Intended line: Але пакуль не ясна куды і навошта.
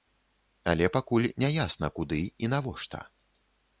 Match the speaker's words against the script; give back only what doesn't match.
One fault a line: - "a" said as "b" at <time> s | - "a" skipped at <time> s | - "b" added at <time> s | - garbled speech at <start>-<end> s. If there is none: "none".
none